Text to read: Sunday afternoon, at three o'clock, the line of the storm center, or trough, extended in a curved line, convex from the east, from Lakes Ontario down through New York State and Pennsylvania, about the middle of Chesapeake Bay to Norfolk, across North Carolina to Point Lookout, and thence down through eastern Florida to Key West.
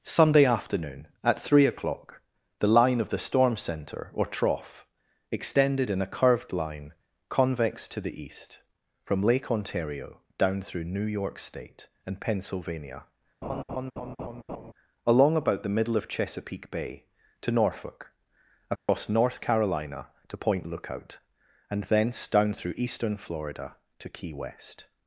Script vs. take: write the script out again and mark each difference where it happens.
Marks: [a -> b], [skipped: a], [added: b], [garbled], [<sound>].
Sunday afternoon, at three o'clock, the line of the storm center, or trough, extended in a curved line, convex [from -> to] the east, from [Lakes -> Lake] Ontario down through New York State and Pennsylvania, [laugh] [added: along] about the middle of Chesapeake Bay to Norfolk, across [dropout] North Carolina to Point Lookout, and thence down through eastern Florida to Key West.